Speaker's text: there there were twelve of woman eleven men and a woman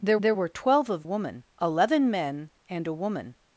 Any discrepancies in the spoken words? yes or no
no